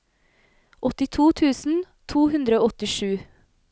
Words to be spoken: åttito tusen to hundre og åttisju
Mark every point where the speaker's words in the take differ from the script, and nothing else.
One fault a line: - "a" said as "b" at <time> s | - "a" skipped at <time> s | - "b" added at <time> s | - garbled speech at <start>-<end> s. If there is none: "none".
none